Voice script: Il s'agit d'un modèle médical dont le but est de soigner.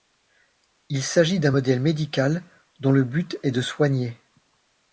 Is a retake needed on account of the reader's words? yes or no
no